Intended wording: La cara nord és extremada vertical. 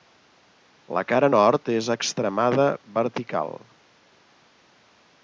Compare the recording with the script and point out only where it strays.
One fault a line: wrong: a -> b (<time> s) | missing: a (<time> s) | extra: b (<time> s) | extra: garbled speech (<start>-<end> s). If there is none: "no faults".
no faults